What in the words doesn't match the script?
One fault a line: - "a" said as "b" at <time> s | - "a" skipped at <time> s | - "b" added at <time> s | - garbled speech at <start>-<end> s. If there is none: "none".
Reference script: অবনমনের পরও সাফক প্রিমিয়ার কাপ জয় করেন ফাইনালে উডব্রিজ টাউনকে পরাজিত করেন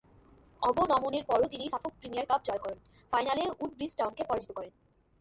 - "তিনি" added at 1.5 s